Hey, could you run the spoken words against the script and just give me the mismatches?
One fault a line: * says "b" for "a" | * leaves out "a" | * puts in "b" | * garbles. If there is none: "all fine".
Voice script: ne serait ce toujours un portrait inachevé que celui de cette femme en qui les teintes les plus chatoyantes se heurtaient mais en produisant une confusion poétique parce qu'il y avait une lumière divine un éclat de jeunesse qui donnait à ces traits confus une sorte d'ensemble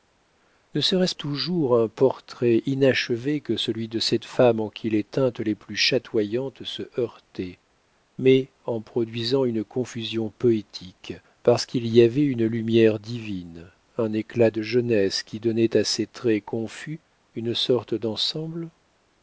all fine